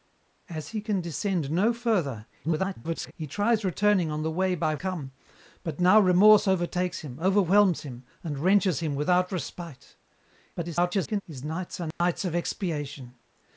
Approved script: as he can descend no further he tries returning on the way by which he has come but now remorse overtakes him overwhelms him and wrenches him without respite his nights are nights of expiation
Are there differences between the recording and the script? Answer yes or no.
yes